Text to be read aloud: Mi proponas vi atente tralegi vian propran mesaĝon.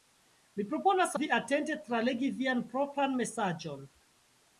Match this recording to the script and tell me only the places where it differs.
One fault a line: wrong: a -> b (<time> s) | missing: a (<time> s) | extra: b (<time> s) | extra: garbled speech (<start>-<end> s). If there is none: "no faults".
no faults